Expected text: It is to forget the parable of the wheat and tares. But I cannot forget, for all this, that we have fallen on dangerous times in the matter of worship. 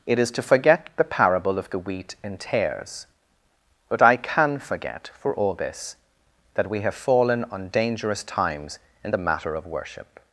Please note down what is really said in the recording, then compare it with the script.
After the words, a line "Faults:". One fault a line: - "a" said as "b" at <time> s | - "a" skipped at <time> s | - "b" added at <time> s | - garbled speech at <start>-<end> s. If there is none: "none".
It is to forget the parable of the wheat and tares. But I can forget, for all this, that we have fallen on dangerous times in the matter of worship.
Faults:
- "cannot" said as "can" at 4.2 s